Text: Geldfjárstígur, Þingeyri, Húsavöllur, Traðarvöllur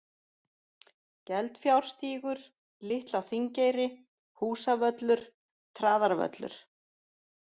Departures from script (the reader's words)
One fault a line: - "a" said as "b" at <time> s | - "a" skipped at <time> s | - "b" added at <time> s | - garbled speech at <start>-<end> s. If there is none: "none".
- "Litla" added at 2.9 s